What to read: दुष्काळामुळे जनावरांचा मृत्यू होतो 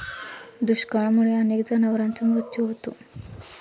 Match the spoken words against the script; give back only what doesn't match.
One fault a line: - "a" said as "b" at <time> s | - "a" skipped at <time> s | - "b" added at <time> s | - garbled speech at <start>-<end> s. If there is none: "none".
- "अनेक" added at 1.4 s